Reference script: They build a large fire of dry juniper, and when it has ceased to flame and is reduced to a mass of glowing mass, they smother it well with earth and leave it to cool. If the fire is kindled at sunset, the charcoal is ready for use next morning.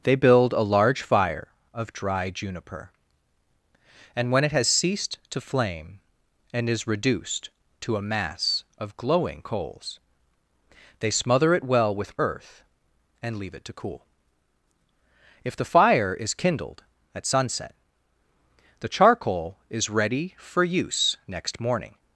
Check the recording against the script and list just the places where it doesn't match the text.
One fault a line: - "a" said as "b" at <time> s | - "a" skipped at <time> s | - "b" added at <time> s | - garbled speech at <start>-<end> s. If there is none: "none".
- "mass" said as "coals" at 9.4 s